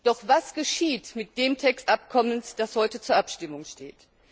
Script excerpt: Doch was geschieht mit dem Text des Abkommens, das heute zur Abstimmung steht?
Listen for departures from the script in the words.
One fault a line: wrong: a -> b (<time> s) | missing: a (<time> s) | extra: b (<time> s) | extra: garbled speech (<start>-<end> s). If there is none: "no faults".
missing: des (1.9 s)